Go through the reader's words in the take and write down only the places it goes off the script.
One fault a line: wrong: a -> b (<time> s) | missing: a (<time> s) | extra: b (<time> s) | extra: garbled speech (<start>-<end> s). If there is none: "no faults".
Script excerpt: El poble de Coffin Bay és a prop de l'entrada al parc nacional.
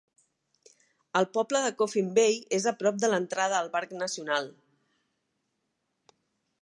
no faults